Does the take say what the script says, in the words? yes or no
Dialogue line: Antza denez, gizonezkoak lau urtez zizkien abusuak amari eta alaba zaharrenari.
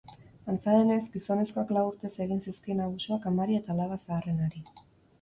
no